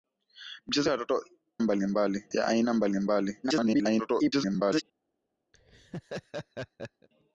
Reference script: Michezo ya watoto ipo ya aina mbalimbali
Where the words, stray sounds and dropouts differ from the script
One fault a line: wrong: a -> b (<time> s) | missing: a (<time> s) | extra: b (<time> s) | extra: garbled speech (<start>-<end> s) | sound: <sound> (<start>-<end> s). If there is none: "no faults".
wrong: ipo -> mbalimbali (1.6 s)
extra: garbled speech (3.4-4.8 s)
sound: laugh (5.5-7.1 s)